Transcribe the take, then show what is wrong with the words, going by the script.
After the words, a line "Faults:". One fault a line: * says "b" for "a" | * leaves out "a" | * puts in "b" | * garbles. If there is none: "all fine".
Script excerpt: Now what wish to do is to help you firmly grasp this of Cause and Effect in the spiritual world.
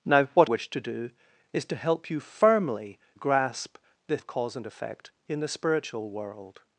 Now what wish to do is to help you firmly grasp this of Cause and Effect in the spiritual world.
Faults:
all fine